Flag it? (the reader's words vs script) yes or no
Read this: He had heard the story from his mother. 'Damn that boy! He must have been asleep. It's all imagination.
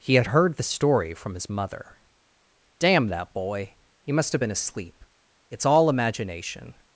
no